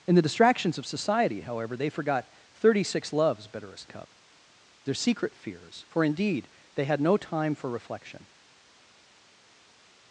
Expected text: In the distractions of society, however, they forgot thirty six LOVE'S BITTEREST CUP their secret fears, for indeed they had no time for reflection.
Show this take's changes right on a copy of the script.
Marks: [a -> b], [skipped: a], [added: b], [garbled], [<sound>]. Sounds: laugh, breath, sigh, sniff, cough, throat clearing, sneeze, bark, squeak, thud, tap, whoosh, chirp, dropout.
In the distractions of society, however, they forgot thirty six LOVE'S BITTEREST CUP their secret fears, for indeed they had no time for reflection.